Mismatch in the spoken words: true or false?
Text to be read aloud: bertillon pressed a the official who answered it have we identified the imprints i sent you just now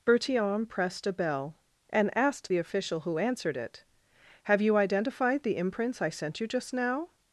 true